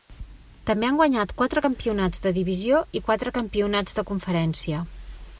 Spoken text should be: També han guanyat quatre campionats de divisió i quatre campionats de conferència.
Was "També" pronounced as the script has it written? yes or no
yes